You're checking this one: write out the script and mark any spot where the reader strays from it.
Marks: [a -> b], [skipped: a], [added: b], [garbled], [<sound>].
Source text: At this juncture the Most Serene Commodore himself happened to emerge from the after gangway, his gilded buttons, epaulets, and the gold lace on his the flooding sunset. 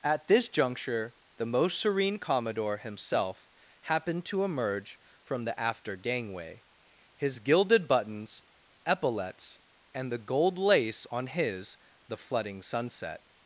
At this juncture the Most Serene Commodore himself happened to emerge from the after gangway, his gilded buttons, epaulets, and the gold lace on his the flooding sunset.